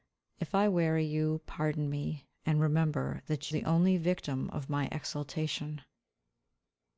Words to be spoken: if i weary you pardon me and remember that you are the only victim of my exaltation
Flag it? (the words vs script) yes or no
yes